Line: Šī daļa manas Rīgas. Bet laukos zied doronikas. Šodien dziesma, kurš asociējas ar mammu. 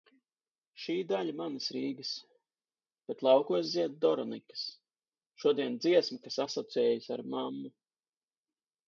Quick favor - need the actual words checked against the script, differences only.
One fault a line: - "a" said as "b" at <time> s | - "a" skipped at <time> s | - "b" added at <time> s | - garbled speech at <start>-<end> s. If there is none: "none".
- "kurš" said as "kas" at 6.3 s